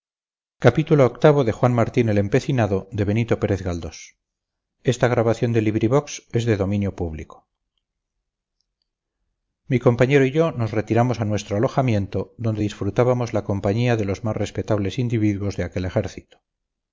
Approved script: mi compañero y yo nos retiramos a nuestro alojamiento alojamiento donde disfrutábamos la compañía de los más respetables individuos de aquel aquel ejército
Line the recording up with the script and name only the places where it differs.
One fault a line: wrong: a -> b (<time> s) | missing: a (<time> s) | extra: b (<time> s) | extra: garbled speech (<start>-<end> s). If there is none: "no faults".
missing: alojamiento (12.3 s)
missing: aquel (15.8 s)